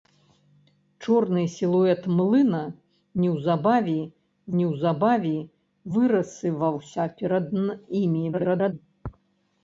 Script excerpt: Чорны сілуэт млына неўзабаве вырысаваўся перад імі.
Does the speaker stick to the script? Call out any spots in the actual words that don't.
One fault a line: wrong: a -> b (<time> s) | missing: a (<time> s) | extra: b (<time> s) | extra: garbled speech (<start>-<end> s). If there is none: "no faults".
extra: неўзабаве (4.6 s)
extra: garbled speech (8.3-8.7 s)